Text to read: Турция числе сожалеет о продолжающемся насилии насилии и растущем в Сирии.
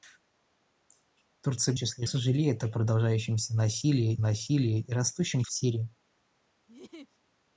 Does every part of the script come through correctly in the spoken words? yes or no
yes